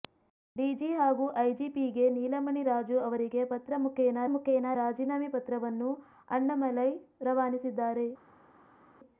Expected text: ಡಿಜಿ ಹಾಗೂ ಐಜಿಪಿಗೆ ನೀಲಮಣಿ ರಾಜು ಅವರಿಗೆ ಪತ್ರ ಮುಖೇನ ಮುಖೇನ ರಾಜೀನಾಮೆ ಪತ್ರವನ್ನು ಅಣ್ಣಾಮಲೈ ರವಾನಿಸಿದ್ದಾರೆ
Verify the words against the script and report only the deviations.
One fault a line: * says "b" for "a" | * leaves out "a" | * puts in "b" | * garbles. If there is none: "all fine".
all fine